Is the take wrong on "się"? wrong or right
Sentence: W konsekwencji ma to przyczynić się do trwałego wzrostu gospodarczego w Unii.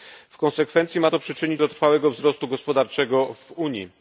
wrong